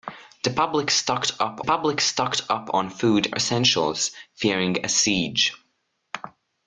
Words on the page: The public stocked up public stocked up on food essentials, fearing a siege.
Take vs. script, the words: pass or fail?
pass